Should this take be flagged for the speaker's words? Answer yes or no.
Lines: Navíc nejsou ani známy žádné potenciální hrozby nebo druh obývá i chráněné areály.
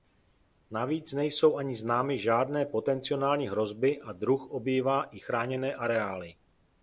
yes